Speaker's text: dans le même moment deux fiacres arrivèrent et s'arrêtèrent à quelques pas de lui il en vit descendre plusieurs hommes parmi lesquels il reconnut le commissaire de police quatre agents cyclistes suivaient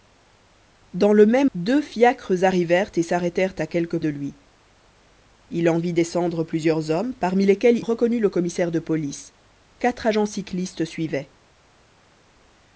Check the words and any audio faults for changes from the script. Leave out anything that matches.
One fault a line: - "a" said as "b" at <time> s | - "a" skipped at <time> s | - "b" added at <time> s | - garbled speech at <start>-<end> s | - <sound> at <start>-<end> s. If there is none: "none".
- "moment" skipped at 1.5 s
- "pas" skipped at 4.0 s
- "il" skipped at 7.8 s